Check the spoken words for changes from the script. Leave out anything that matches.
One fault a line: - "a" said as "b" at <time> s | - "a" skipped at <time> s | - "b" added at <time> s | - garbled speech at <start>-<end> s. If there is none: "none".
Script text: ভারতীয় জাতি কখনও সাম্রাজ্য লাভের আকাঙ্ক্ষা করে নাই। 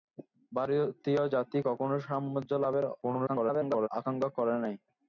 - garbled speech at 3.0-3.9 s